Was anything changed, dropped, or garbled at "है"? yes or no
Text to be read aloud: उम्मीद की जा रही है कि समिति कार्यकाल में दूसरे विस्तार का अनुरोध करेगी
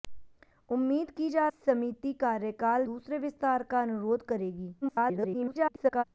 yes